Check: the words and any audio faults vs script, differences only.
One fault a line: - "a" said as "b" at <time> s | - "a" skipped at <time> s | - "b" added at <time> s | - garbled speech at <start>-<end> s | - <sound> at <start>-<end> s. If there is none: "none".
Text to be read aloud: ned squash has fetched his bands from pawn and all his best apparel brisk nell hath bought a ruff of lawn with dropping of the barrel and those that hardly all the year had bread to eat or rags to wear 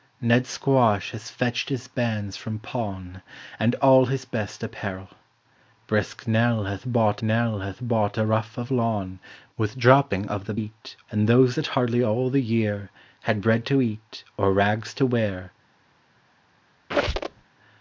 - "nell hath bought" added at 7.2 s
- "barrel" said as "eat" at 10.5 s
- squeak at 16.9-17.4 s